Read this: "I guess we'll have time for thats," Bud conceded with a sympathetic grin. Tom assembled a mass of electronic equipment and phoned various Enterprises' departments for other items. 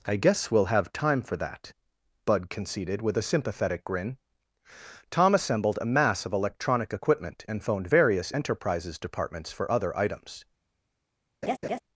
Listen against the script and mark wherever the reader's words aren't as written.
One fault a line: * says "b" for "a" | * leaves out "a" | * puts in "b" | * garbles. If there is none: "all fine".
* says "that" for "thats"